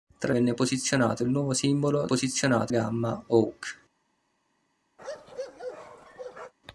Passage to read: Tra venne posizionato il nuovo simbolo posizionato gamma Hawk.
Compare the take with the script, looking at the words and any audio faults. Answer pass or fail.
fail